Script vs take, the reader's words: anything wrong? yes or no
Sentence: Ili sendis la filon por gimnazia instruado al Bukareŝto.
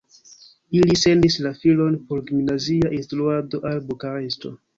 no